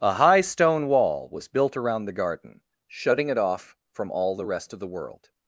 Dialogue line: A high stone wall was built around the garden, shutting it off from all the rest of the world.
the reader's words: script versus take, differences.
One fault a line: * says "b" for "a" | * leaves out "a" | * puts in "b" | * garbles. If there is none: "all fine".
all fine